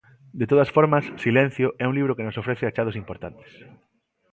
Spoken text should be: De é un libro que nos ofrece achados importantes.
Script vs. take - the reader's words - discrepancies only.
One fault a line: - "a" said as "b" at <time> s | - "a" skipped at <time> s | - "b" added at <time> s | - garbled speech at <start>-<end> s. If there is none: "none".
- "todas formas Silencio" added at 0.5 s